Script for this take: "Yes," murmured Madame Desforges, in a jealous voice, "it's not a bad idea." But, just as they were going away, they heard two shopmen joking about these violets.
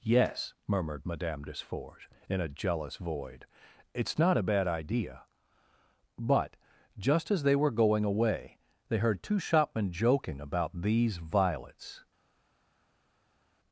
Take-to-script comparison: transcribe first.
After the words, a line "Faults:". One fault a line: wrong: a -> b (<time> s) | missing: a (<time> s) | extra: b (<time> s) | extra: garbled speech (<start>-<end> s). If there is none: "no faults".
"Yes," murmured Madame Desforges, in a jealous void, "it's not a bad idea." But, just as they were going away, they heard two shopmen joking about these violets.
Faults:
wrong: voice -> void (2.9 s)